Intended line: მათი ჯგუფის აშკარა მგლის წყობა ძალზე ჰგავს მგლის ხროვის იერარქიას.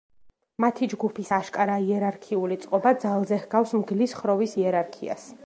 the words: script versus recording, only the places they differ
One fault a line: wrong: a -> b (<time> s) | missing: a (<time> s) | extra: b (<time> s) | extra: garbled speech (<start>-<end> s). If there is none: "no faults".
wrong: მგლის -> იერარქიული (1.9 s)